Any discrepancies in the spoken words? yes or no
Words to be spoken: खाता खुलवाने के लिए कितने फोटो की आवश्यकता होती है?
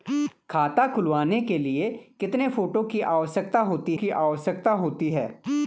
yes